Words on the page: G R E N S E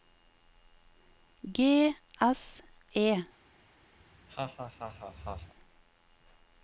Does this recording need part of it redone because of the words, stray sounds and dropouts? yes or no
yes